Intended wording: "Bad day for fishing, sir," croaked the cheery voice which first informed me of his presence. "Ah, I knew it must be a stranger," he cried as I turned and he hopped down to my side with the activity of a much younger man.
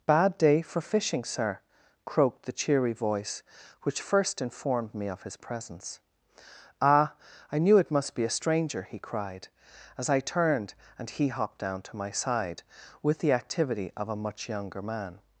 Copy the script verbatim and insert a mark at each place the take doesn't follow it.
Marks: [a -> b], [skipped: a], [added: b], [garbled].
"Bad day for fishing, sir," croaked the cheery voice which first informed me of his presence. "Ah, I knew it must be a stranger," he cried as I turned and he hopped down to my side with the activity of a much younger man.